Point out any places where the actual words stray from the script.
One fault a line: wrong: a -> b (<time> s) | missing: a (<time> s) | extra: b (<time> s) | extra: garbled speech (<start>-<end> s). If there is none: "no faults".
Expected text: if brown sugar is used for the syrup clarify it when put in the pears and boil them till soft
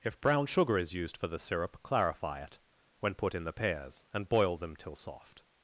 no faults